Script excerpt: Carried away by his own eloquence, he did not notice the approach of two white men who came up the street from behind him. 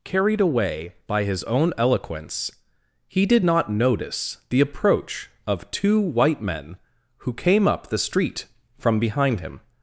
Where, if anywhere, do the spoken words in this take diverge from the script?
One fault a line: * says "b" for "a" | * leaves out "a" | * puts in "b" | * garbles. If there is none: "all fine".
all fine